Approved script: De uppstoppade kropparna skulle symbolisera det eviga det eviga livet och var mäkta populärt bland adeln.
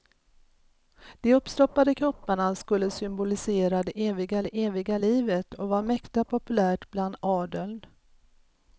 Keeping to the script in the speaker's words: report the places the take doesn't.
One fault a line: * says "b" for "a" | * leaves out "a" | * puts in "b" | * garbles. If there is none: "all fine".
all fine